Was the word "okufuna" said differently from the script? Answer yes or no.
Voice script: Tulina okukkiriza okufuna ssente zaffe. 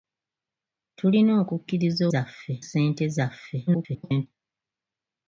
yes